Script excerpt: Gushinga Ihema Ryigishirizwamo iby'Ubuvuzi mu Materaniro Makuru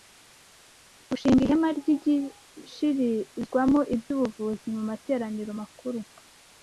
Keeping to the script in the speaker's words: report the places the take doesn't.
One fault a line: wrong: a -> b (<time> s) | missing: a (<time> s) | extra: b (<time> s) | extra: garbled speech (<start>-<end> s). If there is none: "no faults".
no faults